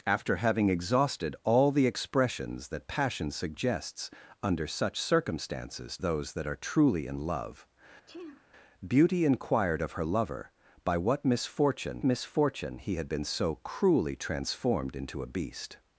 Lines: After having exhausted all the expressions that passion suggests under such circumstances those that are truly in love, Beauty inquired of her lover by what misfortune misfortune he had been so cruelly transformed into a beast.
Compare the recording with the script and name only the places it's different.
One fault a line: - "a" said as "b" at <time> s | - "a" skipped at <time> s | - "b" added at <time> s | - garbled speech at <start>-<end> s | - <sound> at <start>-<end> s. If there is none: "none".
- sneeze at 8.1-8.5 s